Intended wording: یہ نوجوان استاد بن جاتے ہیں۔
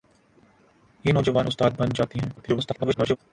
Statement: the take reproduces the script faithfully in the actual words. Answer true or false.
false